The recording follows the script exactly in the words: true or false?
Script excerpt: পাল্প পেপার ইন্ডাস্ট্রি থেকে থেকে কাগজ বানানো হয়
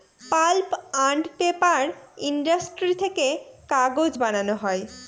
false